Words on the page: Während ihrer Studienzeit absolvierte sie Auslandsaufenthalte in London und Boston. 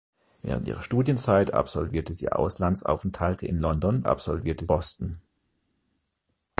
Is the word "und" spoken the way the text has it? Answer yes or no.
no